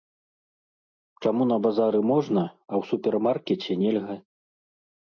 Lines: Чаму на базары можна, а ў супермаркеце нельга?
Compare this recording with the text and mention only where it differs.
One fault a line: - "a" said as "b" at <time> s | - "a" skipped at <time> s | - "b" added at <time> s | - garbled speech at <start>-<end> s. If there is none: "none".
none